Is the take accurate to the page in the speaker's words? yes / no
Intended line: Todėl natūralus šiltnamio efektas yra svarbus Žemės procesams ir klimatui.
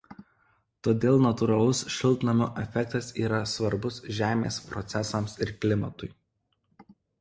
yes